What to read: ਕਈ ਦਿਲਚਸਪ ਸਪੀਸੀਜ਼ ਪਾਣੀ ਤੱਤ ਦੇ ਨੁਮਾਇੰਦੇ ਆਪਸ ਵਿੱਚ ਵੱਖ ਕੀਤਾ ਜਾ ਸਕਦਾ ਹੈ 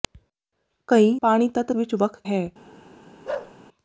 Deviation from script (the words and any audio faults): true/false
true